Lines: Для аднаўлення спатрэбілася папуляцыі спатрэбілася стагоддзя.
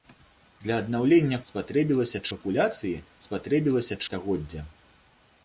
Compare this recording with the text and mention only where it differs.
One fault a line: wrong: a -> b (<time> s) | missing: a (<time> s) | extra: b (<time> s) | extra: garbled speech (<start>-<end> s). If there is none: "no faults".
no faults